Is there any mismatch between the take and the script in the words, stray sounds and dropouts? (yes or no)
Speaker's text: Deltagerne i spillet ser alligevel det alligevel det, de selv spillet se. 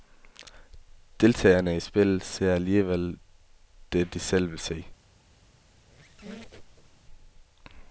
yes